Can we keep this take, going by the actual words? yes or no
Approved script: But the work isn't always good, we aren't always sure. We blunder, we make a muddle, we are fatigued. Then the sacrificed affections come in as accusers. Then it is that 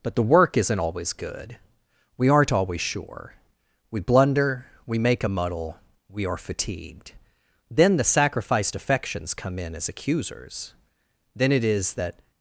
yes